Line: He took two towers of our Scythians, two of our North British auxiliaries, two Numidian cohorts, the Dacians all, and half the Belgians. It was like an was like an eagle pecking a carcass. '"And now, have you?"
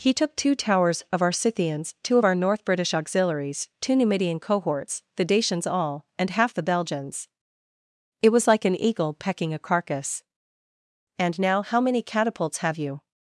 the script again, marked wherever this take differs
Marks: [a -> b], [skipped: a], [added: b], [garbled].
He took two towers of our Scythians, two of our North British auxiliaries, two Numidian cohorts, the Dacians all, and half the Belgians. It was like an [skipped: was like an] eagle pecking a carcass. '"And now, [added: how many catapults] have you?"